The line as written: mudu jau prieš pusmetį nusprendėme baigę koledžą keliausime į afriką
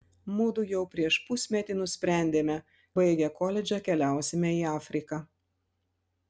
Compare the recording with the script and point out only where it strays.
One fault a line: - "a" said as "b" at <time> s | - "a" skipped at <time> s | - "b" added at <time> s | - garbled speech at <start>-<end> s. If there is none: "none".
none